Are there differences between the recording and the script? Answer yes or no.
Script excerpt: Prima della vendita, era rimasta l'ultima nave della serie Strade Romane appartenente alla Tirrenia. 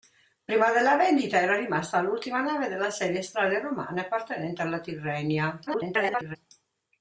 yes